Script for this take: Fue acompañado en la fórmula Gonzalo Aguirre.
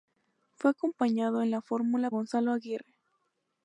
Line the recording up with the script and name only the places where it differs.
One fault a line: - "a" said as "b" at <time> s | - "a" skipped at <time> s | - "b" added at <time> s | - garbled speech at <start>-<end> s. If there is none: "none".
none